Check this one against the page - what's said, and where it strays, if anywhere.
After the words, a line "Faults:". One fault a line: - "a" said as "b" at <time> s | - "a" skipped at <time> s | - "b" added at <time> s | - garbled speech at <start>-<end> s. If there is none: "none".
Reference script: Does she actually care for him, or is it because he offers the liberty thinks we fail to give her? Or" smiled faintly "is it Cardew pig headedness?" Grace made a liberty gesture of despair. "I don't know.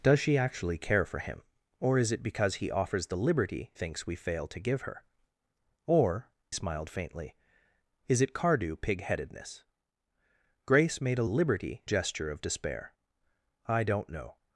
Does she actually care for him, or is it because he offers the liberty thinks we fail to give her? Or" smiled faintly "is it Cardew pig headedness?" Grace made a liberty gesture of despair. "I don't know.
Faults:
none